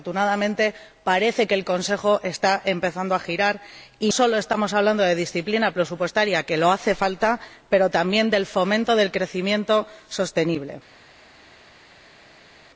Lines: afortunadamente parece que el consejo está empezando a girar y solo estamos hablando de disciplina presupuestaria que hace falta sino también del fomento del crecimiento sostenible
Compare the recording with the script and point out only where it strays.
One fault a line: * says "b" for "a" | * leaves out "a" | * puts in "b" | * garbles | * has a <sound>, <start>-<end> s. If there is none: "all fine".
all fine